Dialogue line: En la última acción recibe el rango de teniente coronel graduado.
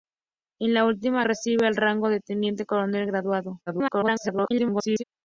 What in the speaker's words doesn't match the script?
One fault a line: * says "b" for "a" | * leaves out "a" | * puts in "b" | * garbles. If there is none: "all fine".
* leaves out "acción"
* garbles